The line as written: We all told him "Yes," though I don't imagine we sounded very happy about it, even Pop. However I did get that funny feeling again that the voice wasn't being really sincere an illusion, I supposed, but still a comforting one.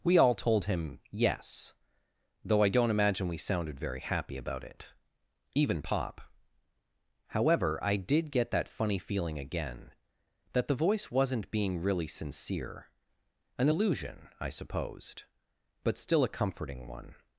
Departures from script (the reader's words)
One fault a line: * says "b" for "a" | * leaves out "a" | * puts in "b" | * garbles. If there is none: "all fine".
all fine